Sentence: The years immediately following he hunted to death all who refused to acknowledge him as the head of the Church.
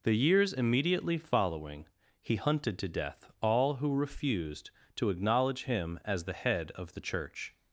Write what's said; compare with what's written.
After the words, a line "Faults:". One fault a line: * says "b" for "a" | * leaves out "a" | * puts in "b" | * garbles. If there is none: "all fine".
The years immediately following he hunted to death all who refused to acknowledge him as the head of the Church.
Faults:
all fine